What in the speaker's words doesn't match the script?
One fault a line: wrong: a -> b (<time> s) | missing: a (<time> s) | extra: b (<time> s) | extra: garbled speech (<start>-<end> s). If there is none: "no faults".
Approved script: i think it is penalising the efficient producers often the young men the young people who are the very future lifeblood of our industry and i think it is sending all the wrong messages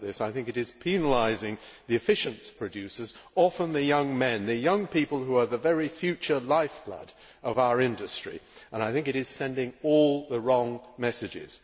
no faults